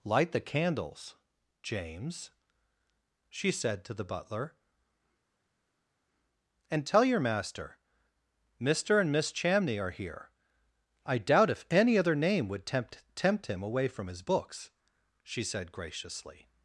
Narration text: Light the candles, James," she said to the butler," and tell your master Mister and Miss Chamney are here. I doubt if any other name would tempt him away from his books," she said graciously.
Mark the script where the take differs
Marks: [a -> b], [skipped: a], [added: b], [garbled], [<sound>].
Light the candles, James," she said to the butler," and tell your master Mister and Miss Chamney are here. I doubt if any other name would tempt [added: tempt] him away from his books," she said graciously.